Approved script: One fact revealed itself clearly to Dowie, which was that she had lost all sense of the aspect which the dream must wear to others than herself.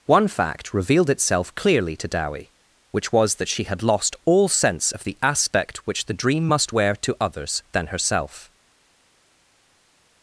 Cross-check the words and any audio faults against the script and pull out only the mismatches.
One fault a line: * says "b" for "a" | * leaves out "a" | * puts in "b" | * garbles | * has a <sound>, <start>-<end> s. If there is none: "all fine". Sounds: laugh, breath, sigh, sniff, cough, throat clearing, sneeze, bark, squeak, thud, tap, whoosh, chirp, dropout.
all fine